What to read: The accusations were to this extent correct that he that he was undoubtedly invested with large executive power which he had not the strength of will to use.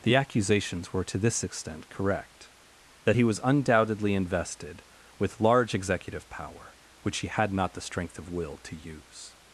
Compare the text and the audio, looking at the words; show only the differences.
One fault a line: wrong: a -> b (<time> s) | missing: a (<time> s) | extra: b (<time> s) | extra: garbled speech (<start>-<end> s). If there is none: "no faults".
missing: that he (3.2 s)